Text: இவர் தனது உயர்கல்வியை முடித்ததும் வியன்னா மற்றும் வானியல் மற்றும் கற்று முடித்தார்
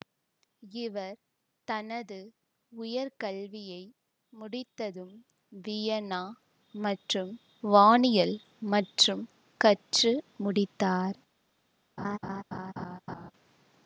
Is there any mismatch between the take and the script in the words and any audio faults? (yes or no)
yes